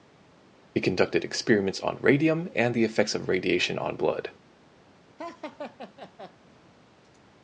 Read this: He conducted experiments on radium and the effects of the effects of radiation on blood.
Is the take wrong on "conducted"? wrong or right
right